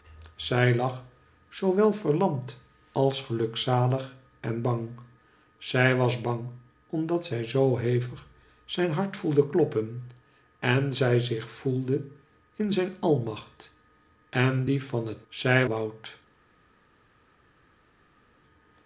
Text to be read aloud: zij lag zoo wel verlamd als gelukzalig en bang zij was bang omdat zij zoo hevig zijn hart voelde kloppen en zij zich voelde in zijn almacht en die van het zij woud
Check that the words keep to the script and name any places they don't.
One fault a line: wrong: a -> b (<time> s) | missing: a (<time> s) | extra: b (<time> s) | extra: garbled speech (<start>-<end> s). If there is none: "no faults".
no faults